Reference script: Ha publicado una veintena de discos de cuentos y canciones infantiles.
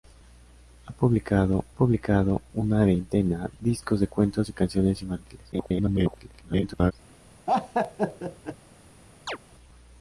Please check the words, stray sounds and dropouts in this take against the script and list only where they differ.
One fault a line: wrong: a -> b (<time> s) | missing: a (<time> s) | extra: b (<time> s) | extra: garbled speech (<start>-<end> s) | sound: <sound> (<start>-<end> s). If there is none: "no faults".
extra: publicado (1.7 s)
missing: de (3.5 s)
extra: garbled speech (5.5-6.9 s)
sound: laugh (7.5-8.6 s)
sound: chirp (9.3-9.4 s)